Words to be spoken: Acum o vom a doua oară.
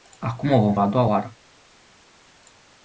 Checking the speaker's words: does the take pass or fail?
pass